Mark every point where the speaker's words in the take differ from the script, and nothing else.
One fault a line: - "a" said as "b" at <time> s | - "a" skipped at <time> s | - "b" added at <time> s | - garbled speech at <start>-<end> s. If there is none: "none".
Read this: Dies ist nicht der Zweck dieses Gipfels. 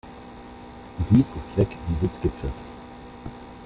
- "nicht der" skipped at 1.5 s